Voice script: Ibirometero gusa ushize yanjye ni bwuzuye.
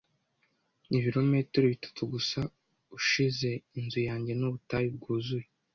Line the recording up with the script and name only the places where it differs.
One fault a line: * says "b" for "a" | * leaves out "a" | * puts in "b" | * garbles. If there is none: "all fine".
* puts in "bitatu"
* puts in "inzu"
* puts in "ubutayu"